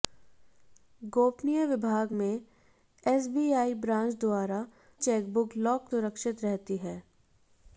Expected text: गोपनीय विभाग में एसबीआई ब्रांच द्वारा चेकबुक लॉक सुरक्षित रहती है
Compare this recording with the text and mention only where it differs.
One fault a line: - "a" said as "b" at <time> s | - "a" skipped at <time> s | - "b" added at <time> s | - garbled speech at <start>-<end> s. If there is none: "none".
none